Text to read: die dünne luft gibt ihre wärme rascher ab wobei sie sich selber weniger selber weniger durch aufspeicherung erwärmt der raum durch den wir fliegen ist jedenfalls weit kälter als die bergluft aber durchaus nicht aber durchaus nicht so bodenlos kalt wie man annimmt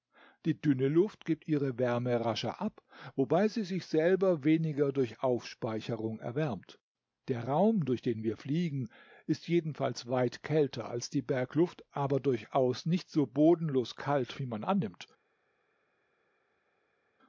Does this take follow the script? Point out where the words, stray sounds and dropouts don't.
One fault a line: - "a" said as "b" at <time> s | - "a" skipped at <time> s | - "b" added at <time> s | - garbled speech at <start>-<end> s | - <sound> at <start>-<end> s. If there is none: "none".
- "selber weniger" skipped at 4.9 s
- "aber durchaus nicht" skipped at 13.1 s